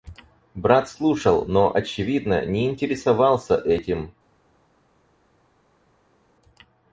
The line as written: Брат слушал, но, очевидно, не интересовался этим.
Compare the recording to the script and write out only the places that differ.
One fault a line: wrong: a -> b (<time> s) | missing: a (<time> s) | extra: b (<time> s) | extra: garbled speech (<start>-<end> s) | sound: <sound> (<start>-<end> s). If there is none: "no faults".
no faults